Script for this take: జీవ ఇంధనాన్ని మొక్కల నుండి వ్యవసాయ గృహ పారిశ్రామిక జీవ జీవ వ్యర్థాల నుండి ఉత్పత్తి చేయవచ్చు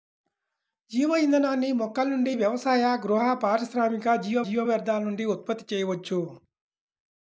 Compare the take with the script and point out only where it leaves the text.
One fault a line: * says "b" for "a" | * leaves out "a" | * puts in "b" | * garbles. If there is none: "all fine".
all fine